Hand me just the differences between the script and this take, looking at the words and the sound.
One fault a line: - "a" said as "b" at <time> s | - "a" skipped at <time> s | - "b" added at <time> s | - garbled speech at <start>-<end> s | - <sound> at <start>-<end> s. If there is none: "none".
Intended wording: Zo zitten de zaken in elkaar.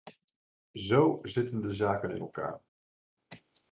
none